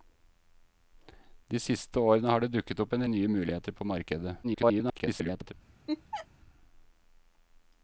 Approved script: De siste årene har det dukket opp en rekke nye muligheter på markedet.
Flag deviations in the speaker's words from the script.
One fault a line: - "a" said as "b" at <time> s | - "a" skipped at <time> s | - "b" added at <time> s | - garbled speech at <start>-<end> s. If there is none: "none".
- "rekke" skipped at 3.0 s
- garbled speech at 4.4-5.5 s